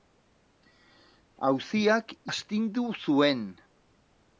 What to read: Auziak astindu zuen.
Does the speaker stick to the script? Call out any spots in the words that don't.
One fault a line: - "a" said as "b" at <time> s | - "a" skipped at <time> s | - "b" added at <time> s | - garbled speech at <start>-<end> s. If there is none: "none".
none